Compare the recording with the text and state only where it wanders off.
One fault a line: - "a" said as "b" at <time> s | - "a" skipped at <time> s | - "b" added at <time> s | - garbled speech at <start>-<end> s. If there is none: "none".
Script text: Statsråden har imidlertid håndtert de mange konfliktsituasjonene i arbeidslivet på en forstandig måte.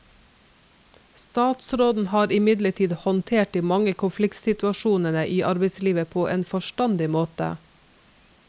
none